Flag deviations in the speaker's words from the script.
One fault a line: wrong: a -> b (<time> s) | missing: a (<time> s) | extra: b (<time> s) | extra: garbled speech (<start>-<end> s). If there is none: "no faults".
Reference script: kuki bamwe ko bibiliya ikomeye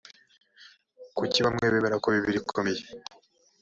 extra: bemera (1.7 s)